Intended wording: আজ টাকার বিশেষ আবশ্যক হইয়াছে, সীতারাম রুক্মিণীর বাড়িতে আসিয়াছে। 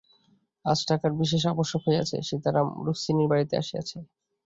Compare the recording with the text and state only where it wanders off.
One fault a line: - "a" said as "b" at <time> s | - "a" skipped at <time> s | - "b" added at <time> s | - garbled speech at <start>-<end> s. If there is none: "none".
none